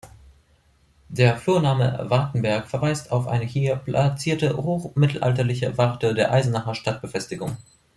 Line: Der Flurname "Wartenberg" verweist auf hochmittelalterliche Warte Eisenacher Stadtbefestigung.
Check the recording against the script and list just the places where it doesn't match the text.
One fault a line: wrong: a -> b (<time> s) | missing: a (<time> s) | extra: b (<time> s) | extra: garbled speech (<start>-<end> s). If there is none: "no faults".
extra: eine hier platzierte (3.3 s)
extra: der (6.1 s)